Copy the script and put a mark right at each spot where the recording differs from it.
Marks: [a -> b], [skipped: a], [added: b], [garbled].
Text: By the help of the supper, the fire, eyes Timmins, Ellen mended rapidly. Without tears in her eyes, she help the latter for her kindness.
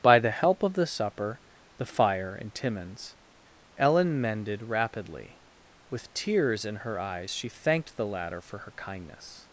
By the help of the supper, the fire, [eyes -> and] Timmins, Ellen mended rapidly. [Without -> With] tears in her eyes, she [help -> thanked] the latter for her kindness.